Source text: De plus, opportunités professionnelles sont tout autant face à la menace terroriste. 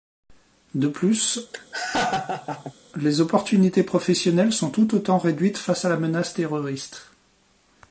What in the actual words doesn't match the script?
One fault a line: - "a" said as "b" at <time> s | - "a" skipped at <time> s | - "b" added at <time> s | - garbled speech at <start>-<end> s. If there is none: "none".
- "les" added at 3.0 s
- "réduites" added at 5.2 s